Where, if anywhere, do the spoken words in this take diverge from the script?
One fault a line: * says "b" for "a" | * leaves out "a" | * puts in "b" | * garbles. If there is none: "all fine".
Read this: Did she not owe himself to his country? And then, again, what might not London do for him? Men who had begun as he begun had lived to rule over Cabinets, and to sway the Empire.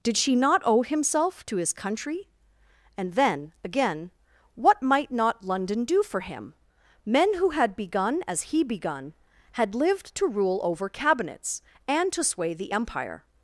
all fine